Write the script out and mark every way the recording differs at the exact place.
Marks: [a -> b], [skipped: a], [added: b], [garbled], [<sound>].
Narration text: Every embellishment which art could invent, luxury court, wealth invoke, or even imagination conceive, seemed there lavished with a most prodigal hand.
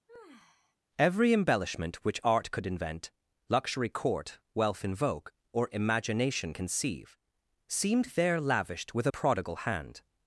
[sigh] Every embellishment which art could invent, luxury court, wealth invoke, or [skipped: even] imagination conceive, seemed there lavished with a [skipped: most] prodigal hand.